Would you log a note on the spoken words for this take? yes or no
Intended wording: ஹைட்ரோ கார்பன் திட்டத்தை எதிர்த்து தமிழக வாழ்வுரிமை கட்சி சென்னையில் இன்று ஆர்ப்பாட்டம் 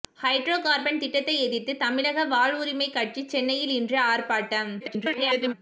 yes